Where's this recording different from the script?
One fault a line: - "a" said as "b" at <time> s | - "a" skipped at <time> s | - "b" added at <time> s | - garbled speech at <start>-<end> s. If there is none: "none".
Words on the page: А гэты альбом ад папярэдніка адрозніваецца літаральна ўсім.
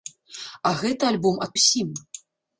- "папярэдніка адрозніваецца літаральна" skipped at 1.5 s